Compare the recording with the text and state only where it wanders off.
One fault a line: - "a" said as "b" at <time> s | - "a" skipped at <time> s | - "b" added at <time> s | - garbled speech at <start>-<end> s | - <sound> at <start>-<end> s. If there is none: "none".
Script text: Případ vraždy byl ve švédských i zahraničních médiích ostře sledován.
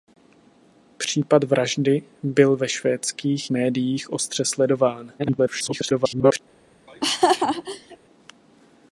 - "i zahraničních" skipped at 3.5 s
- garbled speech at 5.2-6.4 s
- laugh at 6.9-8.0 s